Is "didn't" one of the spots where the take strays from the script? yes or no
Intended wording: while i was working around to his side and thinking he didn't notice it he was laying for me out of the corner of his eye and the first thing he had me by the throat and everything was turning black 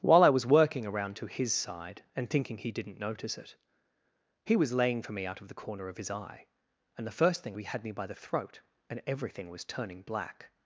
no